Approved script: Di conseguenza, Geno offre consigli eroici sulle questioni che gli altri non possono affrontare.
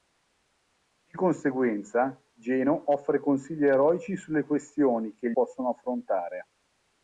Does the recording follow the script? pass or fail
fail